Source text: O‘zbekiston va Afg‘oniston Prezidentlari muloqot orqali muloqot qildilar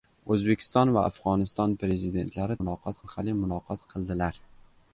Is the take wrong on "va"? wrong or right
right